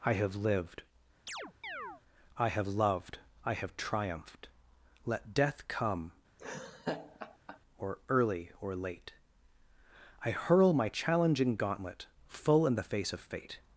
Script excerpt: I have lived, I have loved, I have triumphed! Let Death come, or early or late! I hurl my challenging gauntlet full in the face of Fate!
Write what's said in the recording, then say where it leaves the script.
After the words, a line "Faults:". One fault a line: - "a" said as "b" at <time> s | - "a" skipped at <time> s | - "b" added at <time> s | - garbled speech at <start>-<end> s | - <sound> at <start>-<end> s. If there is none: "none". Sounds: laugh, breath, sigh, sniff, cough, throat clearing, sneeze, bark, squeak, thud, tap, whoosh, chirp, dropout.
I have lived, I have loved, I have triumphed! Let Death come, or early or late! I hurl my challenging gauntlet full in the face of Fate!
Faults:
- chirp at 1.3-2.0 s
- laugh at 6.4-7.6 s